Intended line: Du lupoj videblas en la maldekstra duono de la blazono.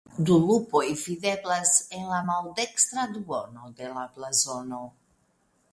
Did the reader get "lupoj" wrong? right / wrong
right